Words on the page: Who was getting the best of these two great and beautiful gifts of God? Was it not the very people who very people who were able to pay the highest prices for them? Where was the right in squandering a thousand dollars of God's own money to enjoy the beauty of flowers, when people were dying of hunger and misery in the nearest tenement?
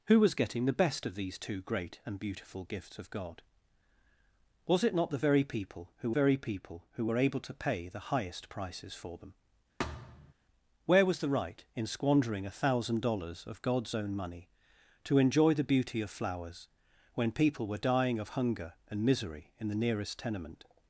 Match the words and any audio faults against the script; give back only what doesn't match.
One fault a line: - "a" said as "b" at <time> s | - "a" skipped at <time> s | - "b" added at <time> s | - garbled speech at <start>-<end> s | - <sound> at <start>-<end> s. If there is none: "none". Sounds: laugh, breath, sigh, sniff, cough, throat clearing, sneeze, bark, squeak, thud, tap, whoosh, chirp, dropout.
- thud at 9.8-10.3 s